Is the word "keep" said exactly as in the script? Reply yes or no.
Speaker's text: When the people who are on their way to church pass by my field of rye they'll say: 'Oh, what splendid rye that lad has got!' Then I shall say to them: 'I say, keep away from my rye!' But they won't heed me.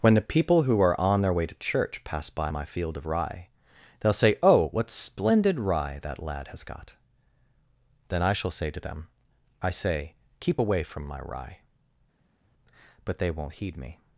yes